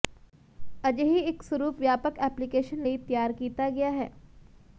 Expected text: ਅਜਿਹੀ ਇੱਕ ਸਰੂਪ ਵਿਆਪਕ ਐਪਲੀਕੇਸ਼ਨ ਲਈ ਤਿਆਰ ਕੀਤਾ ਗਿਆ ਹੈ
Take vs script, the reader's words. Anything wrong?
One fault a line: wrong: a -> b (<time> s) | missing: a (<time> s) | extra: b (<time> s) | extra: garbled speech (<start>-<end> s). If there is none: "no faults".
no faults